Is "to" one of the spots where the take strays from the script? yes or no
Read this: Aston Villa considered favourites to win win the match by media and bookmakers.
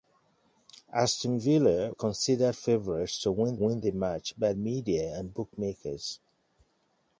no